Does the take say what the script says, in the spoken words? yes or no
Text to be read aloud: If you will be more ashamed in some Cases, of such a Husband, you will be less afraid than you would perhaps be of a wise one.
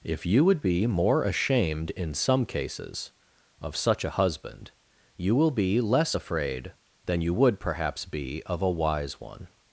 no